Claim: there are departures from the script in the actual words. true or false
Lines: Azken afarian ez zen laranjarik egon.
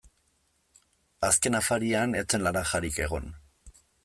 false